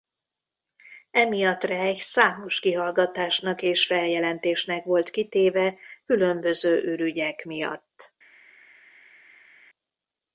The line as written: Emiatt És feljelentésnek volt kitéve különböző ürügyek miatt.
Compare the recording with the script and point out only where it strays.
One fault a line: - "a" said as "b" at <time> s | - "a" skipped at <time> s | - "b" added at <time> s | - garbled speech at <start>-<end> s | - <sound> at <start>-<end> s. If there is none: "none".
- "Reich számos kihallgatásnak" added at 1.6 s